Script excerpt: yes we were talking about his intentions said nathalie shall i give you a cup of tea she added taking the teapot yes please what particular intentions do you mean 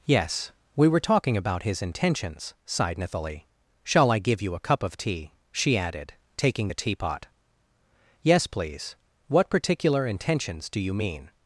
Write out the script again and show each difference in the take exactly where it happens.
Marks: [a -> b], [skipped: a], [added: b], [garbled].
yes we were talking about his intentions [said -> sighed] nathalie shall i give you a cup of tea she added taking the teapot yes please what particular intentions do you mean